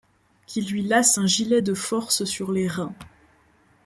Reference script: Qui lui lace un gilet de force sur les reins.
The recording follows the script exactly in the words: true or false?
true